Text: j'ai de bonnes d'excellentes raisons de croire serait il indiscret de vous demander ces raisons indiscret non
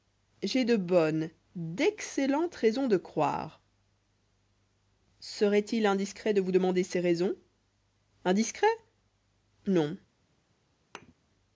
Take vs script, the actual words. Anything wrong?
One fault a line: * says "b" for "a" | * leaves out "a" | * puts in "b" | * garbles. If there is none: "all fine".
all fine